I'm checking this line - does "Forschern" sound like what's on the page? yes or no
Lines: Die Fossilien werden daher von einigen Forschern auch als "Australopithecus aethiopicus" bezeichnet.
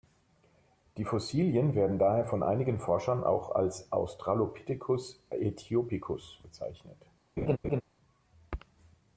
yes